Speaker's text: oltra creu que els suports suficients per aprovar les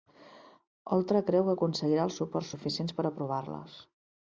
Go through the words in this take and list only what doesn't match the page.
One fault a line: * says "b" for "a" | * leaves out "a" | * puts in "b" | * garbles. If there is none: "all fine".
* puts in "aconseguirà"